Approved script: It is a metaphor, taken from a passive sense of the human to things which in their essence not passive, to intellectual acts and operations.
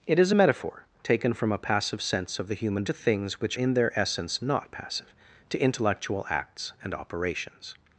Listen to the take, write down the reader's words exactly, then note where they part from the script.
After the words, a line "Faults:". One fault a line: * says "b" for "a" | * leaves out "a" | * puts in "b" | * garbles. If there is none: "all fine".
It is a metaphor, taken from a passive sense of the human to things which in their essence not passive, to intellectual acts and operations.
Faults:
all fine